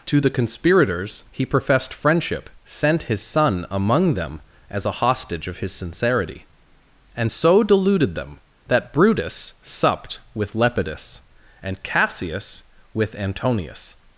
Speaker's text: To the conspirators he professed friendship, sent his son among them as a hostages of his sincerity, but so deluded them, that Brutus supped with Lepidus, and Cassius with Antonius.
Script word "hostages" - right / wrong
wrong